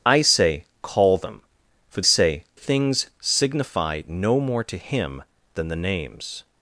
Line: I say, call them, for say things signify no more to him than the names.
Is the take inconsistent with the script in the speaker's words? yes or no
no